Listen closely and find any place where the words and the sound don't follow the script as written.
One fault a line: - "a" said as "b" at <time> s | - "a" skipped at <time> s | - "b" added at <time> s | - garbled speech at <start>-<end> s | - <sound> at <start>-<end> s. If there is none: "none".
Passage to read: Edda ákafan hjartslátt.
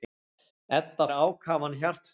none